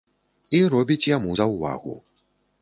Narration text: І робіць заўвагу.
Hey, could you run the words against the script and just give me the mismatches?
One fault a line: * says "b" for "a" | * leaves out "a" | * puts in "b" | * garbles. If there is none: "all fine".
* puts in "яму"